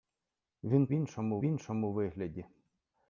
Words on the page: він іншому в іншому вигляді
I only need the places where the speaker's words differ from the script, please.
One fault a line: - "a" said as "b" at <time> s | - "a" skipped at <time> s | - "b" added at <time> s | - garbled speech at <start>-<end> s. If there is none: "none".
none